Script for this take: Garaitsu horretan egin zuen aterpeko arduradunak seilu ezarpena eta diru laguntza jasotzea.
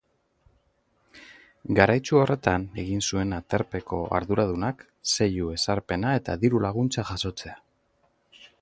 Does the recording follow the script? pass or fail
pass